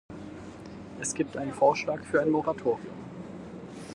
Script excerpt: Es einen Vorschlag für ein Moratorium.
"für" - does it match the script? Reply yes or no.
yes